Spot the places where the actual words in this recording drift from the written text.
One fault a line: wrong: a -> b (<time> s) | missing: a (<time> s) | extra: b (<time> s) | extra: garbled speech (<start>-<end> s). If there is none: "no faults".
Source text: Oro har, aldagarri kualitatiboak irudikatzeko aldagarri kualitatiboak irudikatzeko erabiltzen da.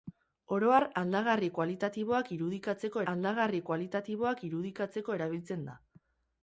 no faults